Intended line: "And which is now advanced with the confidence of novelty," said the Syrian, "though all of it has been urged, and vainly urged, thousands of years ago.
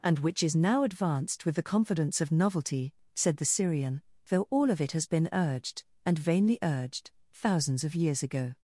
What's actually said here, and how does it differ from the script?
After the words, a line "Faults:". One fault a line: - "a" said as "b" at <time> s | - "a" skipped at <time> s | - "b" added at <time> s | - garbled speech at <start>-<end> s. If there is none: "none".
"And which is now advanced with the confidence of novelty," said the Syrian, "though all of it has been urged, and vainly urged, thousands of years ago.
Faults:
none